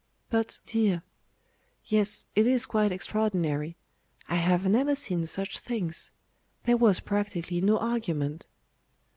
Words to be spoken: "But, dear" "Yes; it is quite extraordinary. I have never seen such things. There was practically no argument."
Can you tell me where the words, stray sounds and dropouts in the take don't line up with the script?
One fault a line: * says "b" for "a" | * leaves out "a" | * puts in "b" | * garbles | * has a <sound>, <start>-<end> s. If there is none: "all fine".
all fine